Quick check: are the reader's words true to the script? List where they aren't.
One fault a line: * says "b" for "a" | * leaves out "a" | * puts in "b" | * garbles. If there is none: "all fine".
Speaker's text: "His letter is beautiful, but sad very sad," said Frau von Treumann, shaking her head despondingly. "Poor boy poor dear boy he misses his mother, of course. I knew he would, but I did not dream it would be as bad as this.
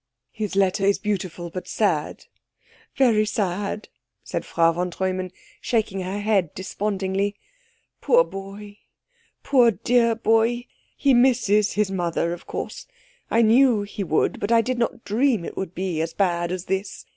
all fine